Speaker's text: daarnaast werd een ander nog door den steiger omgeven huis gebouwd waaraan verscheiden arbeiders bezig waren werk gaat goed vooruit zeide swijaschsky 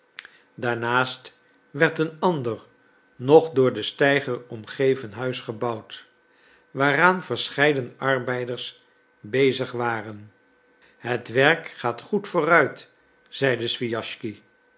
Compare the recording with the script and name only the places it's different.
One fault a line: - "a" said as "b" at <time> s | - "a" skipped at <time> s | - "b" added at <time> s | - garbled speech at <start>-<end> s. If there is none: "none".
- "het" added at 11.0 s